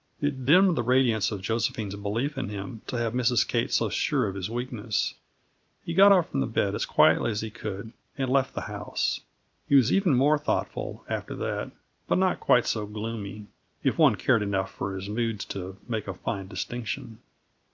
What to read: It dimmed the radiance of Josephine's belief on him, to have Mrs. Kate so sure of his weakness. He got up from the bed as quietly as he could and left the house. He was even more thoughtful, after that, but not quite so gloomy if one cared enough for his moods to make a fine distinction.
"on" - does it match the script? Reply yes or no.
no